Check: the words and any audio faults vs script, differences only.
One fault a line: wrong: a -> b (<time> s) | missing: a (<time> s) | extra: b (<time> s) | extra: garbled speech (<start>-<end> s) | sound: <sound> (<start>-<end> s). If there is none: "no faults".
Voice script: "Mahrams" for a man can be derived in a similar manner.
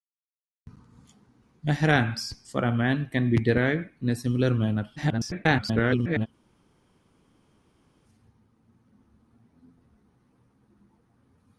extra: garbled speech (5.0-6.3 s)